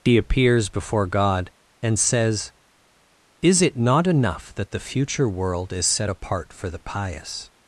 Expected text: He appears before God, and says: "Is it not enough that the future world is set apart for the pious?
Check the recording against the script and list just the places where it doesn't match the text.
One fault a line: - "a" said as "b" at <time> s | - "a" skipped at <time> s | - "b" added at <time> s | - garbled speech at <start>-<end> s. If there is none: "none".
none